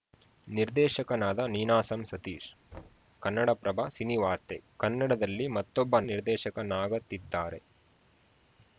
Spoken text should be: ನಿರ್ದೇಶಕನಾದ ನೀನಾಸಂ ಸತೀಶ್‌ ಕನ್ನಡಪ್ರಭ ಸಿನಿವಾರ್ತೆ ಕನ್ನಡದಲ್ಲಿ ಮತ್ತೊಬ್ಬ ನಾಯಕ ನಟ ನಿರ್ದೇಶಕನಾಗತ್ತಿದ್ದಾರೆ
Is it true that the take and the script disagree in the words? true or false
true